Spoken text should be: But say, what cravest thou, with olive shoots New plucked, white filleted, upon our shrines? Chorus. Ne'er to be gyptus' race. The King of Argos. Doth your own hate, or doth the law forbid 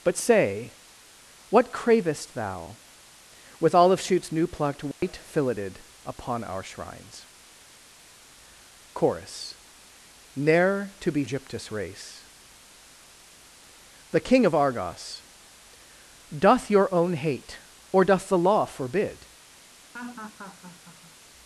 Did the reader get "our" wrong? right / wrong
right